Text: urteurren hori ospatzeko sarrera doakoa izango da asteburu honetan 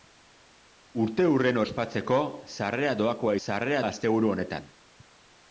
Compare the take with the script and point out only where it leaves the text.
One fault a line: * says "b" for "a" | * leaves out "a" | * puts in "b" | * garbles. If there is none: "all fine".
* leaves out "hori"
* says "sarrera" for "izango"